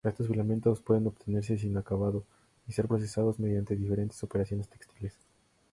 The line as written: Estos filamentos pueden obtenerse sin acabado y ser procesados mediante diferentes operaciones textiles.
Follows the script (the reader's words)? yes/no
yes